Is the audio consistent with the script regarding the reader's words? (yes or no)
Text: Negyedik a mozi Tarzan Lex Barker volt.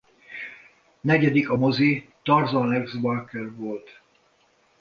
yes